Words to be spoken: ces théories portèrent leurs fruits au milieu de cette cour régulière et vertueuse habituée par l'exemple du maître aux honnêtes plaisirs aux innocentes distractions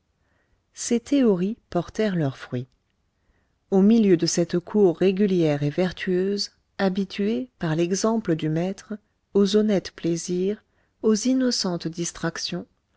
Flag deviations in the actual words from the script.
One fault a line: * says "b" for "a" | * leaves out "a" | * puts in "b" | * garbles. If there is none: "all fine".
all fine